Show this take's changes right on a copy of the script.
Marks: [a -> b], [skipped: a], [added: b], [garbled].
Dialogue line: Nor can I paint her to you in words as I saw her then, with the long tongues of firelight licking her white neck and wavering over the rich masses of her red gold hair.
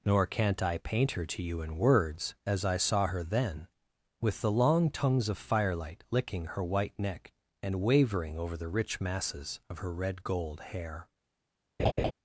Nor [can -> can't] I paint her to you in words as I saw her then, with the long tongues of firelight licking her white neck and wavering over the rich masses of her red gold hair.